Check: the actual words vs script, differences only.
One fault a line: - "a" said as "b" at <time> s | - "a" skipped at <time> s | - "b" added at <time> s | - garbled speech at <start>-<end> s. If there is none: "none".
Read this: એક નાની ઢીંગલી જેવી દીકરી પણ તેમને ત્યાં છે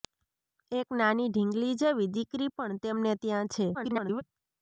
- garbled speech at 3.7-4.2 s